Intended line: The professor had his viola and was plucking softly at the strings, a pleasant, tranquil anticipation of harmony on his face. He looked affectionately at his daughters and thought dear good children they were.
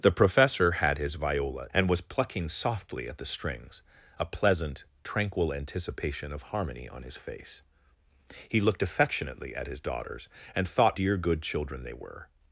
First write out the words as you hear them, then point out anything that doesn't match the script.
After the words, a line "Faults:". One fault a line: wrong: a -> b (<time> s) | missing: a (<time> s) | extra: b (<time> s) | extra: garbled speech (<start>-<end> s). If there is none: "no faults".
The professor had his viola and was plucking softly at the strings, a pleasant, tranquil anticipation of harmony on his face. He looked affectionately at his daughters and thought dear good children they were.
Faults:
no faults